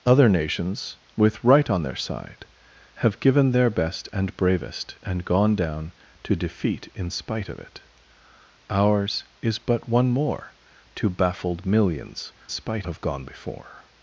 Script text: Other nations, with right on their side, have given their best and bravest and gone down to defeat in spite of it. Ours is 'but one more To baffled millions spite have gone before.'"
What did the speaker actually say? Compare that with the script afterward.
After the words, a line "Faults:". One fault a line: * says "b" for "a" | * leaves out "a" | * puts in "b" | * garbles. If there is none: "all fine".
Other nations, with right on their side, have given their best and bravest and gone down to defeat in spite of it. Ours is 'but one more To baffled millions spite have gone before.'"
Faults:
all fine